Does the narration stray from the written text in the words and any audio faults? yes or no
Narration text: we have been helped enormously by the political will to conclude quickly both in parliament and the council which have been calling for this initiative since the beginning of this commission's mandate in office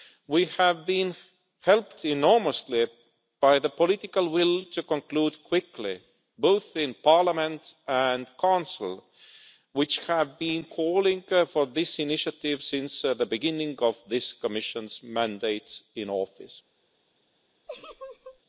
yes